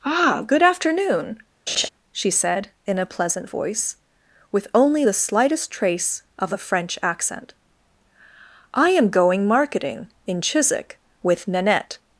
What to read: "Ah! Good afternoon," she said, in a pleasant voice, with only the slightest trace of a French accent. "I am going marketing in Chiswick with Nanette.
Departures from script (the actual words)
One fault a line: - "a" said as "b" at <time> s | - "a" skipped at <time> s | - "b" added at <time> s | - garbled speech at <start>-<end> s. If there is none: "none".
none